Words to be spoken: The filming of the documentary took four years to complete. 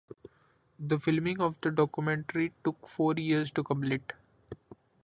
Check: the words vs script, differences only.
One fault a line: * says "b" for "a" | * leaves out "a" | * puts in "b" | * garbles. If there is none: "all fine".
all fine